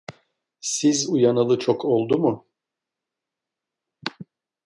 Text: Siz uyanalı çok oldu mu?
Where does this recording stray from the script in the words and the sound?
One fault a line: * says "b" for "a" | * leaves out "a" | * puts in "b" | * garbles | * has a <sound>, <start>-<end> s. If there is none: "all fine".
all fine